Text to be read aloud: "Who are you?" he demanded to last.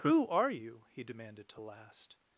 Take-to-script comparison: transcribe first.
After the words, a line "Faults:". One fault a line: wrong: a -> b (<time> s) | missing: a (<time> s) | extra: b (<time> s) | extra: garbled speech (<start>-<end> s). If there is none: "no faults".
"Who are you?" he demanded to last.
Faults:
no faults